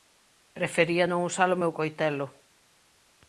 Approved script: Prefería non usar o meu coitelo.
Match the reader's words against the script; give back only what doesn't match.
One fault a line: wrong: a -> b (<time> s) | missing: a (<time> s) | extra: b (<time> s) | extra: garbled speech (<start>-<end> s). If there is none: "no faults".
no faults